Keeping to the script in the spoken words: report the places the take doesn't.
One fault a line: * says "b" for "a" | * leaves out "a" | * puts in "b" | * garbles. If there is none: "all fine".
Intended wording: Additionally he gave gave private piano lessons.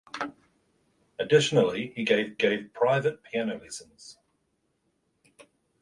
all fine